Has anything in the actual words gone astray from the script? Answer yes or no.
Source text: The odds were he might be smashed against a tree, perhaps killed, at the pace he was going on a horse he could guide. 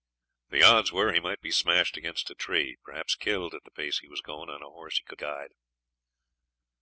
no